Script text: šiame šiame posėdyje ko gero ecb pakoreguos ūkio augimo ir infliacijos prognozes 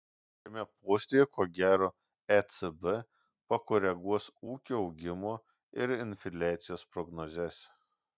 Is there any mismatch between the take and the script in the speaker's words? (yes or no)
yes